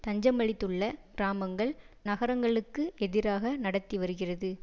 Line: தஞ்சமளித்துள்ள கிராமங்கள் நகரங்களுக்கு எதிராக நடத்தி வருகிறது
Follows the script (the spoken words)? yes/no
yes